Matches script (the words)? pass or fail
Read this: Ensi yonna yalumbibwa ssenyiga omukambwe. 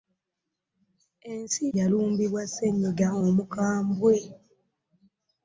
fail